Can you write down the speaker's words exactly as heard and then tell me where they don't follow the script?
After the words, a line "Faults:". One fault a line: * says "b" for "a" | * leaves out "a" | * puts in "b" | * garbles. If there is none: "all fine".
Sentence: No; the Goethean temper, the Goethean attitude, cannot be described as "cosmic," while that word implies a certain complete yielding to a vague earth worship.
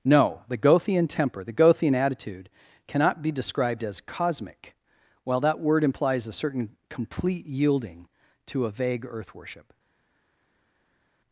No; the Goethean temper, the Goethean attitude, cannot be described as "cosmic," while that word implies a certain complete yielding to a vague earth worship.
Faults:
all fine